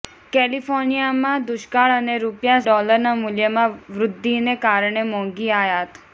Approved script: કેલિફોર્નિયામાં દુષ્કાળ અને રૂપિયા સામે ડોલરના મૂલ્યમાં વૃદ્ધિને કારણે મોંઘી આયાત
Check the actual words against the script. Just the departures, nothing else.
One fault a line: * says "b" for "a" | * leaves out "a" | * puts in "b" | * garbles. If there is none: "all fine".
* leaves out "સામે"